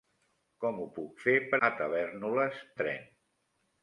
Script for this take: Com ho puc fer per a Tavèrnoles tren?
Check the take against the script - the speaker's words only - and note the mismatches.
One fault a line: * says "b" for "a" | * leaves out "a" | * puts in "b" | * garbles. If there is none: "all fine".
all fine